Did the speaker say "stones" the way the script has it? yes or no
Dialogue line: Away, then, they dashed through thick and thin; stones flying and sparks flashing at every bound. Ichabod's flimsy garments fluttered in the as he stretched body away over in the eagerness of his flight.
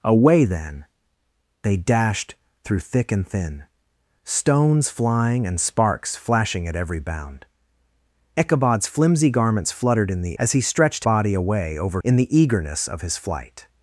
yes